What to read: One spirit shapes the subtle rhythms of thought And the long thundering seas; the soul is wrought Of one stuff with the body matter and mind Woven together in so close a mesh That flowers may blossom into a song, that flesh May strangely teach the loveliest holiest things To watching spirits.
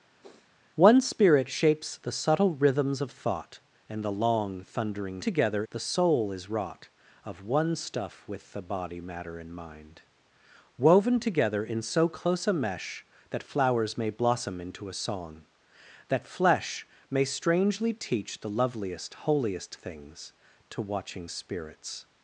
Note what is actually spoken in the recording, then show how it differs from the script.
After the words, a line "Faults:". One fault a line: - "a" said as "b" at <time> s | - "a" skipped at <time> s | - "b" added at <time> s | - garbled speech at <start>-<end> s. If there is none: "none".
One spirit shapes the subtle rhythms of thought And the long thundering together; the soul is wrought Of one stuff with the body matter and mind Woven together in so close a mesh That flowers may blossom into a song, that flesh May strangely teach the loveliest holiest things To watching spirits.
Faults:
- "seas" said as "together" at 5.2 s